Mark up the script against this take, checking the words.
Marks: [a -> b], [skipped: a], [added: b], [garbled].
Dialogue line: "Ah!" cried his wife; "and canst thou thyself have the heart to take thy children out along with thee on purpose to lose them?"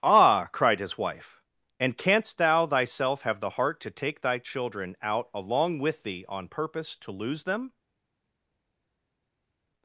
"Ah!" cried his wife; "and canst thou thyself have the heart to take thy children out along with thee on purpose to lose them?"